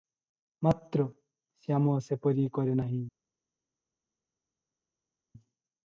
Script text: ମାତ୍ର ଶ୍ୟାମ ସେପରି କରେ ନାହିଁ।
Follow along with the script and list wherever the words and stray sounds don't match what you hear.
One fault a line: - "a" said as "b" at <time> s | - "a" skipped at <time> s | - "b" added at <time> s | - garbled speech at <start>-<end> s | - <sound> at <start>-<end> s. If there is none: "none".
none